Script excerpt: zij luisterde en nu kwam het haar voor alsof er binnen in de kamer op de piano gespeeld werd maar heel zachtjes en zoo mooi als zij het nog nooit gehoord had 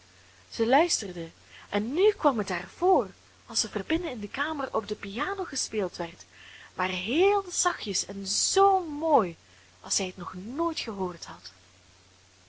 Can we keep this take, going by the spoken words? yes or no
yes